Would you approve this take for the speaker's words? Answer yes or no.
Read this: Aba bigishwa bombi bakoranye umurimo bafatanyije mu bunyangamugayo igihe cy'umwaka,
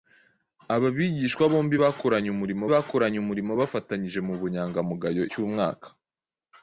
no